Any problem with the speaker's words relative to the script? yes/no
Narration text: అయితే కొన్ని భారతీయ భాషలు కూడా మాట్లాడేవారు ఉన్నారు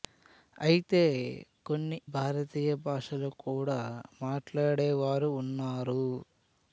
no